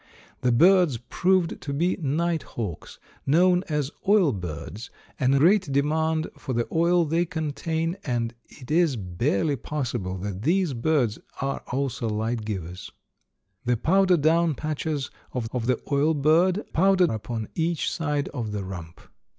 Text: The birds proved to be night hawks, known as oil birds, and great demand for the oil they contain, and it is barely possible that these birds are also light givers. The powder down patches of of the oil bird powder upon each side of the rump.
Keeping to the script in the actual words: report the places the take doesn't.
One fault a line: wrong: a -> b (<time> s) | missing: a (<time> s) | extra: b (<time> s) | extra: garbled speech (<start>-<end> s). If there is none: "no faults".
no faults